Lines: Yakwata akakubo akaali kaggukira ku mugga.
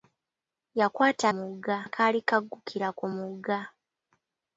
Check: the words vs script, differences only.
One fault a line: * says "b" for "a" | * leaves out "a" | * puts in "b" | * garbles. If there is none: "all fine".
* says "mugga" for "akakubo"